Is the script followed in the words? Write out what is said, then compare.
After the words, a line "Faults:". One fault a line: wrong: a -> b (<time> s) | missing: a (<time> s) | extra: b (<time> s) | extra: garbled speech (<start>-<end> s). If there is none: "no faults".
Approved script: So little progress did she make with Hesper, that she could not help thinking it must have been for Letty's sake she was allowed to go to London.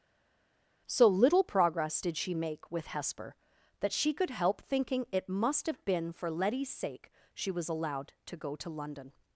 So little progress did she make with Hesper, that she could help thinking it must have been for Letty's sake she was allowed to go to London.
Faults:
missing: not (4.3 s)